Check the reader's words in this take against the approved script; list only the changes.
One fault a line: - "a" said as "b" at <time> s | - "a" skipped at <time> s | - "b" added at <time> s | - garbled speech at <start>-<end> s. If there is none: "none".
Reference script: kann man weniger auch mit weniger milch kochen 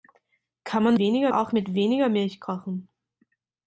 none